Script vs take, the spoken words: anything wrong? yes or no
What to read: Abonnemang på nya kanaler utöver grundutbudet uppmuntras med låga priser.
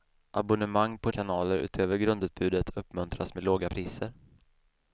yes